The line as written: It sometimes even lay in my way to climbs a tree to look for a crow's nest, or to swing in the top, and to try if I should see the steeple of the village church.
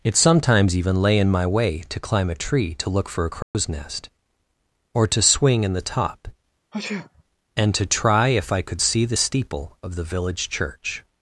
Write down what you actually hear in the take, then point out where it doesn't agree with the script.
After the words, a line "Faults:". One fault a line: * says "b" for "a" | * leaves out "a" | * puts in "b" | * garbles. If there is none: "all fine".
It sometimes even lay in my way to climb a tree to look for a crow's nest, or to swing in the top, and to try if I could see the steeple of the village church.
Faults:
* says "climb" for "climbs"
* says "could" for "should"